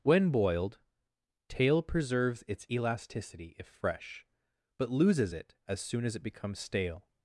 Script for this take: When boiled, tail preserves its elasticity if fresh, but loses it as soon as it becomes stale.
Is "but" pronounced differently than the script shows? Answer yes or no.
no